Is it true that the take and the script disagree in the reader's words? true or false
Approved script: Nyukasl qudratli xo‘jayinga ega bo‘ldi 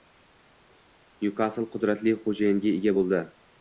false